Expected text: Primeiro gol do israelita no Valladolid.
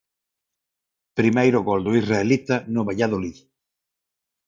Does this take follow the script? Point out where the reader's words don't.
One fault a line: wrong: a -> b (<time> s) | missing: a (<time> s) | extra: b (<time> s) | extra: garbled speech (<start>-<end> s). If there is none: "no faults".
no faults